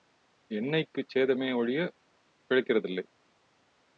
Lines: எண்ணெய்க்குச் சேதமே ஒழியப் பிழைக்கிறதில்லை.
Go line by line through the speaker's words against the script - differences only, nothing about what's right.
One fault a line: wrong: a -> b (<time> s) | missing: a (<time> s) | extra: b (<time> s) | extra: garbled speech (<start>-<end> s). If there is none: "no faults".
no faults